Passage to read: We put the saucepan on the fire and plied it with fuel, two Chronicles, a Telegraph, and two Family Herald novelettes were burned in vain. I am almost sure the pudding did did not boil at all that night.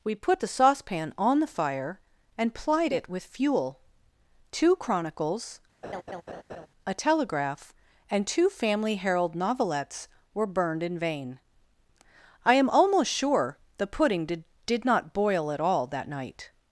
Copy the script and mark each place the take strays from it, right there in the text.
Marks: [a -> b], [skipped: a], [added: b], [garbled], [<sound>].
We put the saucepan on the fire and plied it with fuel, two Chronicles, [laugh] a Telegraph, and two Family Herald novelettes were burned in vain. I am almost sure the pudding did did not boil at all that night.